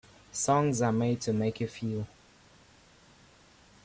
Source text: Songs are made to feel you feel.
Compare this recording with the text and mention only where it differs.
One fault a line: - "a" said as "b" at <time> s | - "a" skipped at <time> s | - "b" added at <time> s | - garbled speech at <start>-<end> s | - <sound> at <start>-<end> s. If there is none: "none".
- "feel" said as "make" at 1.3 s